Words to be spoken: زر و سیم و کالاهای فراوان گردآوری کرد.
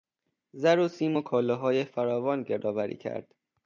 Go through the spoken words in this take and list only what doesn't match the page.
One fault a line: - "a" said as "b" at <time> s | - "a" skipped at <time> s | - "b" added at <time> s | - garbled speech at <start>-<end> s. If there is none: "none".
none